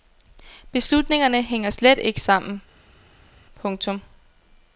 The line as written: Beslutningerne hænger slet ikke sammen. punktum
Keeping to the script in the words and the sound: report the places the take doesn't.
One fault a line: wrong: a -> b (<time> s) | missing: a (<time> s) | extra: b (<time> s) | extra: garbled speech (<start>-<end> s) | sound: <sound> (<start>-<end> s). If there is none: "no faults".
no faults